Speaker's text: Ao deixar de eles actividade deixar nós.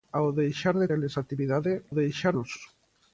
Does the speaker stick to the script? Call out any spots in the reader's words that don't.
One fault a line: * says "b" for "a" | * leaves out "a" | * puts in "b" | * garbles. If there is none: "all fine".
all fine